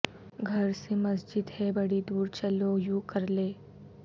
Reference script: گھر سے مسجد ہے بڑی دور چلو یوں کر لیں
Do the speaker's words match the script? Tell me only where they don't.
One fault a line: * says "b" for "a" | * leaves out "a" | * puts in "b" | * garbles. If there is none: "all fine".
all fine